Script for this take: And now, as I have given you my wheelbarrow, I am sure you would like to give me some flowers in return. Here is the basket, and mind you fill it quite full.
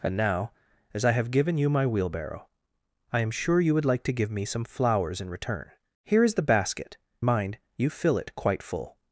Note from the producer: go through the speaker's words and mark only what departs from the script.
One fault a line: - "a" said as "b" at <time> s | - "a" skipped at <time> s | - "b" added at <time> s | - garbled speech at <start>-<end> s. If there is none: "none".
- "and" skipped at 7.0 s